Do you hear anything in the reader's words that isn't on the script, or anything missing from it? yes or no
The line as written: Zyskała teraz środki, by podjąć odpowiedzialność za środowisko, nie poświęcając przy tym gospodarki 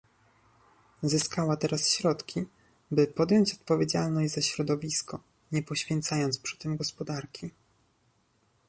no